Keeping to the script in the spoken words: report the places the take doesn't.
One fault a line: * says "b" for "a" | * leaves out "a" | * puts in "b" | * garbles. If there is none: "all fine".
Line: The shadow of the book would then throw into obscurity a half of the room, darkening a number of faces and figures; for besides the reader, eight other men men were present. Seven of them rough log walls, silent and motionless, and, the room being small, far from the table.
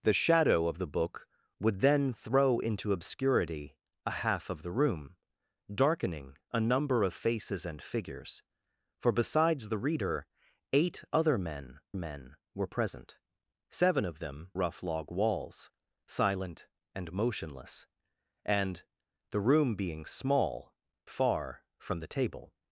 all fine